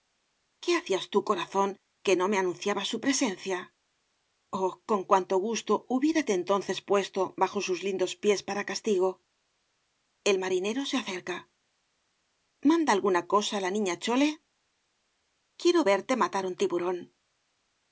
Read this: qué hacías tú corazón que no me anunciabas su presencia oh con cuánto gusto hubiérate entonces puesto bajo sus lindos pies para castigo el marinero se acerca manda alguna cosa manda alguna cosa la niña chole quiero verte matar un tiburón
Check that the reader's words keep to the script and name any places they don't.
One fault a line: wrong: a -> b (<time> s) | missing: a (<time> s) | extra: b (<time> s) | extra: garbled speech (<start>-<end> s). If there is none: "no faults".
missing: manda alguna cosa (13.6 s)